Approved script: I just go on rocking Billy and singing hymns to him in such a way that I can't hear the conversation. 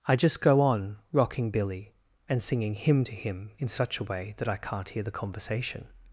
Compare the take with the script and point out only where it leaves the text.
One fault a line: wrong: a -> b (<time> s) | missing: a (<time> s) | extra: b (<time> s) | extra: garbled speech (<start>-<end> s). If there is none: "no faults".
wrong: hymns -> hymn (2.7 s)